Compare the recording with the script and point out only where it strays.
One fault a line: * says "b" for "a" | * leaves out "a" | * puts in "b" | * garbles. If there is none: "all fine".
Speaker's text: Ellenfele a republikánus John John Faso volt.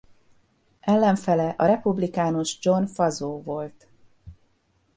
* leaves out "John"